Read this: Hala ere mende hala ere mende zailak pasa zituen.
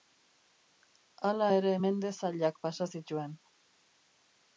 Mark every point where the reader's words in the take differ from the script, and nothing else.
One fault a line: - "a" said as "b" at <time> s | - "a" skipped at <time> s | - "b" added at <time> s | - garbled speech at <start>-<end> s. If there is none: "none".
- "hala ere mende" skipped at 2.1 s